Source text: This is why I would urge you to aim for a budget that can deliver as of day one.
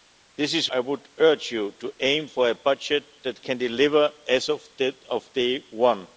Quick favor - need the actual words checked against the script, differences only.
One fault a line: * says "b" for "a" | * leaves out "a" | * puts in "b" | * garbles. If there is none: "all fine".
* leaves out "why"